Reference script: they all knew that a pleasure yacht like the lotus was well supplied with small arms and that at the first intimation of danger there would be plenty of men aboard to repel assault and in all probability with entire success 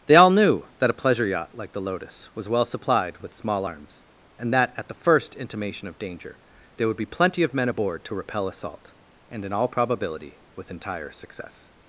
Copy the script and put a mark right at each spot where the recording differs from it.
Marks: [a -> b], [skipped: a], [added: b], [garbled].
they all knew that a pleasure yacht like the lotus was well supplied with small arms and that at the first intimation of danger there would be plenty of men aboard to repel assault and in all probability with entire success